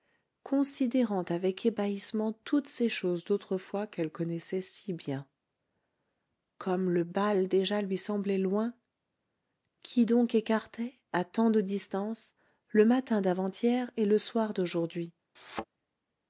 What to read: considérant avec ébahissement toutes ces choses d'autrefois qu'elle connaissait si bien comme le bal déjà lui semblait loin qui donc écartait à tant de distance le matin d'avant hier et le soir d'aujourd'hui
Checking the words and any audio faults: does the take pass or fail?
fail